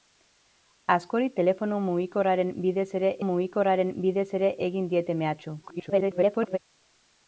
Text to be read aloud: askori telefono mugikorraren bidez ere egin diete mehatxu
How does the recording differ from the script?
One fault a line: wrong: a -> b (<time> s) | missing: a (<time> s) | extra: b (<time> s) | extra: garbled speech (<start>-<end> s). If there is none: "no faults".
extra: mugikorraren bidez ere (3.3 s)
extra: garbled speech (5.6-6.6 s)